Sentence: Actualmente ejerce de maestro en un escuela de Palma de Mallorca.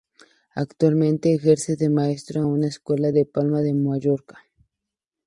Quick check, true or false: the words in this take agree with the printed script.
false